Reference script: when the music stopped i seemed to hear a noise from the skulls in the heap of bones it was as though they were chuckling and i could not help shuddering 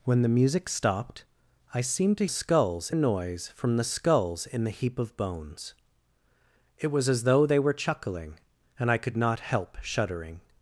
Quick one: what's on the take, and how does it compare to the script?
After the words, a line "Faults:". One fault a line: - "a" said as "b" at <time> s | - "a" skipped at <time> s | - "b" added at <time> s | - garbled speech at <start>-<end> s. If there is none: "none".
when the music stopped i seemed to skulls a noise from the skulls in the heap of bones it was as though they were chuckling and i could not help shuddering
Faults:
- "hear" said as "skulls" at 2.3 s